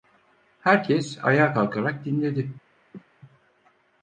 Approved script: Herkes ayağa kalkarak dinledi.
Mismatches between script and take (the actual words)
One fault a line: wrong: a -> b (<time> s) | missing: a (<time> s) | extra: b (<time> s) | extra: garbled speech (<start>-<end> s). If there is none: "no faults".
no faults